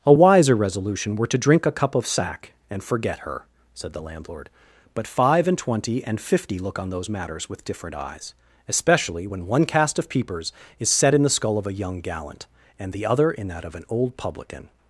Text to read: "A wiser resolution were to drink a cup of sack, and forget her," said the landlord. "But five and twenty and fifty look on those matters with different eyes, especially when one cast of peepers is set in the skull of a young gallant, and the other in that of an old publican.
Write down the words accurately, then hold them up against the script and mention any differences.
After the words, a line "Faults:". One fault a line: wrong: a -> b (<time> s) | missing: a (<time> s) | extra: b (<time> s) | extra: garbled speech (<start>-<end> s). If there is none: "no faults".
"A wiser resolution were to drink a cup of sack, and forget her," said the landlord. "But five and twenty and fifty look on those matters with different eyes, especially when one cast of peepers is set in the skull of a young gallant, and the other in that of an old publican.
Faults:
no faults